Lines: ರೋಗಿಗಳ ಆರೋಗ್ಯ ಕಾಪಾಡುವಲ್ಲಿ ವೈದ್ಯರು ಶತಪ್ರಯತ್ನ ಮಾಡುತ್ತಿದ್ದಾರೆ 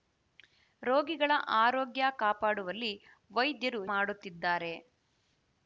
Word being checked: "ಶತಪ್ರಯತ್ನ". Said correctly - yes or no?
no